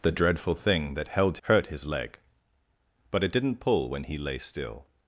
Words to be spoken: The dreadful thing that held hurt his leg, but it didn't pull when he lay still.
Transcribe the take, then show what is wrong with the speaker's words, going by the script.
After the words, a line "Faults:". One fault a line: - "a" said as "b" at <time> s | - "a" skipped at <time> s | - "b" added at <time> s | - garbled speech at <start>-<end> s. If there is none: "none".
The dreadful thing that held hurt his leg, but it didn't pull when he lay still.
Faults:
none